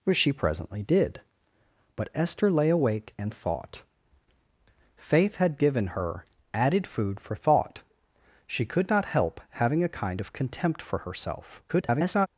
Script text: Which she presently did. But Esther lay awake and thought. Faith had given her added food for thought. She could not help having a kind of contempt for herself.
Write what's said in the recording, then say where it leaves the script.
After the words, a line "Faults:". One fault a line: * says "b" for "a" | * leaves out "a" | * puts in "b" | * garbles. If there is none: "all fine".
Which she presently did. But Esther lay awake and thought. Faith had given her added food for thought. She could not help having a kind of contempt for herself. [garbled]
Faults:
* garbles